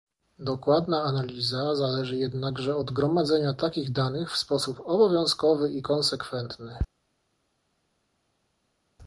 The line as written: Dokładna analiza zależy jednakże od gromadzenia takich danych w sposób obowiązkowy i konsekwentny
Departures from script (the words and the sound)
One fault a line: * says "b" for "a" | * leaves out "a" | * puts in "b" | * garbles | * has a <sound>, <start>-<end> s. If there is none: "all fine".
all fine